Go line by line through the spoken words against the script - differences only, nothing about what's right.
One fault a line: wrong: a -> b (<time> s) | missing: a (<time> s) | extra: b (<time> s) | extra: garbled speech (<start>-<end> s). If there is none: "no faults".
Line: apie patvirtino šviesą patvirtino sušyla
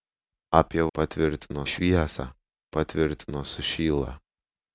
no faults